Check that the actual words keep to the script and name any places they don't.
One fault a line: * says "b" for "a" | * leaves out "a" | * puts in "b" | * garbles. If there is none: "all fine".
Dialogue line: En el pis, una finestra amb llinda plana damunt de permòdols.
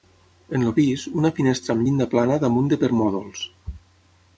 all fine